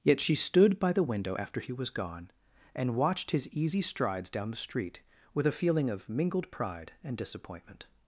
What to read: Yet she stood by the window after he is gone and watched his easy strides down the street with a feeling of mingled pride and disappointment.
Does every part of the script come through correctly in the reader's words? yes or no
no